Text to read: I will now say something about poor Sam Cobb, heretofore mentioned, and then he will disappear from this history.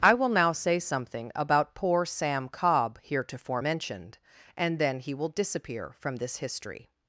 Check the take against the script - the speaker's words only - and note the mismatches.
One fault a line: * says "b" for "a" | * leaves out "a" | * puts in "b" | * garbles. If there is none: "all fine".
all fine